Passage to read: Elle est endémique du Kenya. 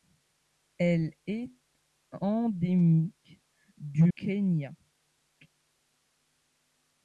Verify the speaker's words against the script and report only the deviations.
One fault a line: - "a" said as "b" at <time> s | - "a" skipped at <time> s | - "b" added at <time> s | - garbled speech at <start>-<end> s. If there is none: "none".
none